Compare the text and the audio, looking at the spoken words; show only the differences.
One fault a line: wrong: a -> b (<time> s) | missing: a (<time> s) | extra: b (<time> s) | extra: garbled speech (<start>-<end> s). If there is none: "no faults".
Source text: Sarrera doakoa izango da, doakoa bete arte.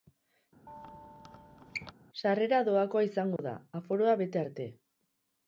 wrong: doakoa -> aforoa (3.8 s)